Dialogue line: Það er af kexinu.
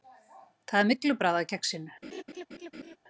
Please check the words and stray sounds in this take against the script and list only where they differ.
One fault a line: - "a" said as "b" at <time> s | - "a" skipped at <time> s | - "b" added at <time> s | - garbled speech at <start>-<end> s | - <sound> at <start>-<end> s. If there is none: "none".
- "myglubragð" added at 0.9 s
- laugh at 2.0-3.0 s